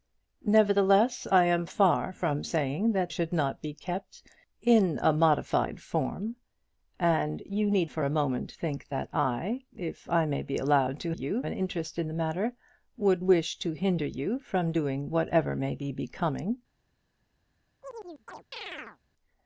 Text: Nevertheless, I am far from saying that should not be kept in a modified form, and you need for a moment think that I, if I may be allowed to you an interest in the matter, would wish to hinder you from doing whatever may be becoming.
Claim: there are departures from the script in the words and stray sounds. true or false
true